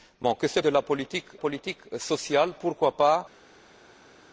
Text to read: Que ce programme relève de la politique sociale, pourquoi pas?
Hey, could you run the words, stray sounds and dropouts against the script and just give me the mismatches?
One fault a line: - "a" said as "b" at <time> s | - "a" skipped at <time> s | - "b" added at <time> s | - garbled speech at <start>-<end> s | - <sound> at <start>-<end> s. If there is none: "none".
- "programme relève" skipped at 0.6 s
- "politique" added at 1.4 s